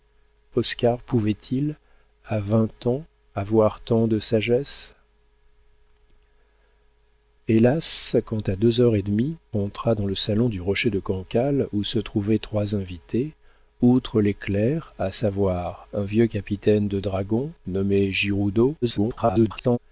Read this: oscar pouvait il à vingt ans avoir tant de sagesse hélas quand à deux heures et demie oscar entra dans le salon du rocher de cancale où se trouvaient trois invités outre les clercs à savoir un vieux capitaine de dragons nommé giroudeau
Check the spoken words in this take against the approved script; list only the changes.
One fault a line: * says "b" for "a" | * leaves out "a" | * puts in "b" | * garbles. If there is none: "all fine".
* leaves out "oscar"
* garbles